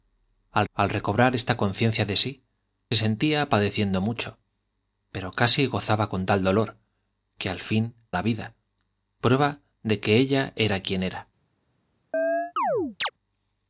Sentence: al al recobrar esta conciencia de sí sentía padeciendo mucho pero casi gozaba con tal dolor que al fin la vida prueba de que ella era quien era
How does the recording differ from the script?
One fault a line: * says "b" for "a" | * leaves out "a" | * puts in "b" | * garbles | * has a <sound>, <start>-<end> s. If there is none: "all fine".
* has a chirp, 12.1-13.1 s